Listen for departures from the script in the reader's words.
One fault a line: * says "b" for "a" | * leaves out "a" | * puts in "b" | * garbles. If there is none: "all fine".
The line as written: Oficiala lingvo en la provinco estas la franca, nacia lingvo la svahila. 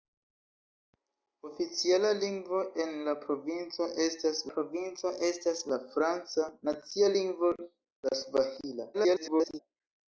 * puts in "provinco estas"
* garbles